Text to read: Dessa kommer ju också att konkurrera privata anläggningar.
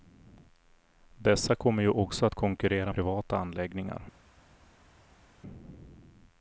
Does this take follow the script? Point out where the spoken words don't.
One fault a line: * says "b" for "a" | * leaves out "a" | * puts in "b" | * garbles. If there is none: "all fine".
all fine